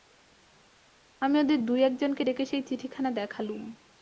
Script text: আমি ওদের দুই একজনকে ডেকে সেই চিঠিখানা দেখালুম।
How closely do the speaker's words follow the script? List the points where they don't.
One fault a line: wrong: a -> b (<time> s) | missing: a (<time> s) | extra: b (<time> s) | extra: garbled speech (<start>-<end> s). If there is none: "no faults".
no faults